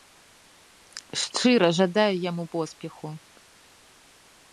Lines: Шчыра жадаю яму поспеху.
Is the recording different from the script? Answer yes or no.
no